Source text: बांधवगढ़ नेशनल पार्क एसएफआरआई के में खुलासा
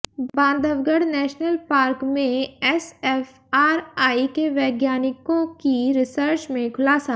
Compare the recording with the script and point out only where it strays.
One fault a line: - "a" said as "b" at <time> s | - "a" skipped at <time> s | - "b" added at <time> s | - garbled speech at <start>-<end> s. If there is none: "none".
- "में" added at 2.0 s
- "वैज्ञानिकों की रिसर्च" added at 4.5 s